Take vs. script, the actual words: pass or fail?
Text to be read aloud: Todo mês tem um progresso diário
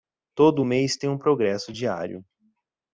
pass